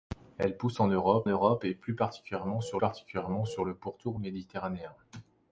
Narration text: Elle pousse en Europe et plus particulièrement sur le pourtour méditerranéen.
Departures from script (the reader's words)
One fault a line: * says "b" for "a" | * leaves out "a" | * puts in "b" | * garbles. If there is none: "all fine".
* puts in "Europe"
* puts in "particulièrement sur"